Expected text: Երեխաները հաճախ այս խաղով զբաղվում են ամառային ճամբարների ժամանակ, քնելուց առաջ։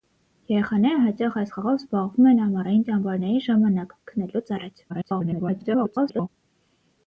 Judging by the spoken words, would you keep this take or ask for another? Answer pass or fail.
fail